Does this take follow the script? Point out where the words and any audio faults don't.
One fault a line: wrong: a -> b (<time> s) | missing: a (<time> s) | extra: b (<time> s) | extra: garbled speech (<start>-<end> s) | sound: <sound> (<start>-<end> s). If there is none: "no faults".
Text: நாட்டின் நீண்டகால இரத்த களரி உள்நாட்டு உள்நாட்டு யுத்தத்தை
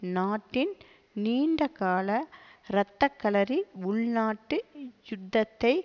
missing: உள்நாட்டு (4.6 s)